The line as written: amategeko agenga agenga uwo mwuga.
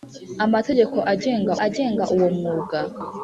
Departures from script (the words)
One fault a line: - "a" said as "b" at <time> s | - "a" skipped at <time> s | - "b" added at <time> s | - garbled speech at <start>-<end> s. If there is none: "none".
none